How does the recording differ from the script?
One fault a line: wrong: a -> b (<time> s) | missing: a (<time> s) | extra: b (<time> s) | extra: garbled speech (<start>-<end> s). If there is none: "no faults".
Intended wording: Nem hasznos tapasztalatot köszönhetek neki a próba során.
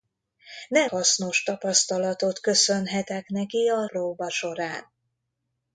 no faults